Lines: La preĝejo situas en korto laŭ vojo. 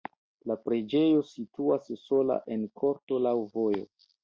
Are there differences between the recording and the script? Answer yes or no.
yes